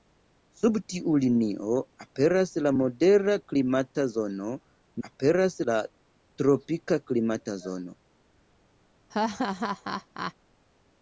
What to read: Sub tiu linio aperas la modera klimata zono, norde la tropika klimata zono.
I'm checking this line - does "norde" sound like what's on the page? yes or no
no